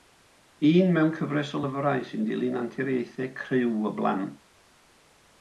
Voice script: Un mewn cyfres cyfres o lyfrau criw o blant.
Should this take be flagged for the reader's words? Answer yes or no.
yes